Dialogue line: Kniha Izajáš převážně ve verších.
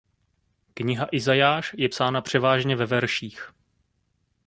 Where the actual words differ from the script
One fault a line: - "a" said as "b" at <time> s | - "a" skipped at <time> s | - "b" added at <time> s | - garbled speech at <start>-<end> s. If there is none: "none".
- "je psána" added at 1.8 s